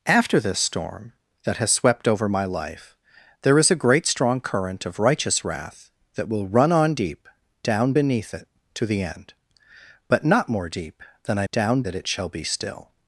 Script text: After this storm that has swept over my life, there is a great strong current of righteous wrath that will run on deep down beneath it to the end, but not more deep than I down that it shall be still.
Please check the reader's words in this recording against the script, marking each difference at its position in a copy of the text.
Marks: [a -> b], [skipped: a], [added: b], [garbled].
After this storm that has swept over my life, there is a great strong current of righteous wrath that will run on deep down beneath it to the end, but not more deep than I down that it shall be still.